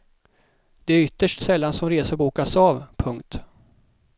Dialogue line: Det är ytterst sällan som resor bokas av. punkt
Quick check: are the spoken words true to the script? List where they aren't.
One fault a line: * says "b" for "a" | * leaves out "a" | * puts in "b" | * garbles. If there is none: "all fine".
all fine